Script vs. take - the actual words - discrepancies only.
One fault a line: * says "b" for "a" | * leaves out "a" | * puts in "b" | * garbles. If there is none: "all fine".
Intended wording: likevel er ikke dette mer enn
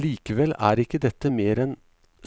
all fine